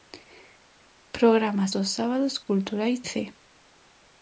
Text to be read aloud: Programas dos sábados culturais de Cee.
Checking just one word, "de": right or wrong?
wrong